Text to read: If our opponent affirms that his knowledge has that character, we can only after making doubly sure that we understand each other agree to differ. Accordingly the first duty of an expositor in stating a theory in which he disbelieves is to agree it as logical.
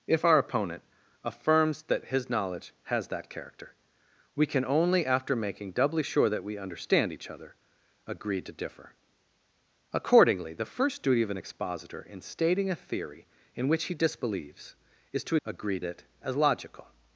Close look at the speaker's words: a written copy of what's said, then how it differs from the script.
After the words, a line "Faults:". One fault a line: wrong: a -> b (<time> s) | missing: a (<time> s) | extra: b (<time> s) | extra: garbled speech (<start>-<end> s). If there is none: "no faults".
If our opponent affirms that his knowledge has that character, we can only after making doubly sure that we understand each other agree to differ. Accordingly the first duty of an expositor in stating a theory in which he disbelieves is to agree it as logical.
Faults:
no faults